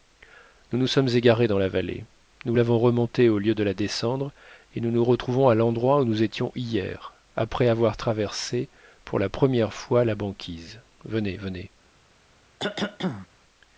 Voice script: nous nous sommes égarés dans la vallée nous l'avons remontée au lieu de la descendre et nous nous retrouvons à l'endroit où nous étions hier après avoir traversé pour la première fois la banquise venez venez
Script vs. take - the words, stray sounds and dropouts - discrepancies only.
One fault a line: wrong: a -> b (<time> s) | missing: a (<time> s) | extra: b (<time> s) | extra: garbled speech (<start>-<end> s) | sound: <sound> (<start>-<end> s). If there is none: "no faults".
sound: cough (12.6-13.3 s)